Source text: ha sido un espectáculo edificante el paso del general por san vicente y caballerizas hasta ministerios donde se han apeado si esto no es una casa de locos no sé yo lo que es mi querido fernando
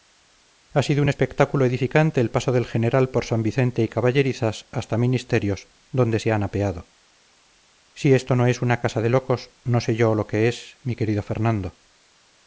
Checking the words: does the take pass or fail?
pass